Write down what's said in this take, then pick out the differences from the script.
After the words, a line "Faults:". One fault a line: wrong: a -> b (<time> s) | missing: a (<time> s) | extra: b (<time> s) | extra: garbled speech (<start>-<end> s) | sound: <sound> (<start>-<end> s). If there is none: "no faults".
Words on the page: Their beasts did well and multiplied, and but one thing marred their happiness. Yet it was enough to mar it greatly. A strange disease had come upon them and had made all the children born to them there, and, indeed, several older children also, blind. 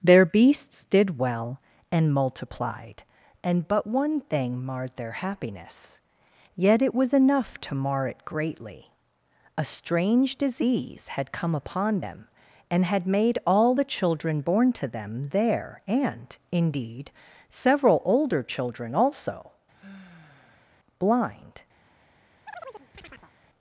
Their beasts did well and multiplied, and but one thing marred their happiness. Yet it was enough to mar it greatly. A strange disease had come upon them and had made all the children born to them there, and, indeed, several older children also, blind.
Faults:
sound: sigh (19.7-20.8 s)
sound: chirp (22.5-23.3 s)